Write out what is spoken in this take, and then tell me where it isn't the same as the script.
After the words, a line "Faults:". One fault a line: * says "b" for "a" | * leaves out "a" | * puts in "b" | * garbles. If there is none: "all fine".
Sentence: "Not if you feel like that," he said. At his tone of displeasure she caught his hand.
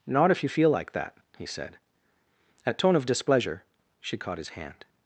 "Not if you feel like that," he said. At tone of displeasure she caught his hand.
Faults:
* leaves out "his"